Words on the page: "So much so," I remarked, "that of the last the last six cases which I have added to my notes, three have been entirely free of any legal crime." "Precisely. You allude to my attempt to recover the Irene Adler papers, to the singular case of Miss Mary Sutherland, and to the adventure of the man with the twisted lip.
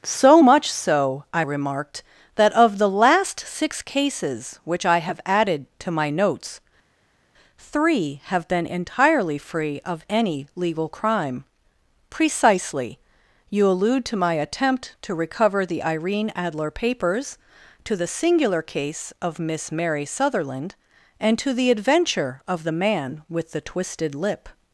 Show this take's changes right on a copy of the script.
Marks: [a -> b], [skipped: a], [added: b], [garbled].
"So much so," I remarked, "that of the last [skipped: the last] six cases which I have added to my notes, three have been entirely free of any legal crime." "Precisely. You allude to my attempt to recover the Irene Adler papers, to the singular case of Miss Mary Sutherland, and to the adventure of the man with the twisted lip.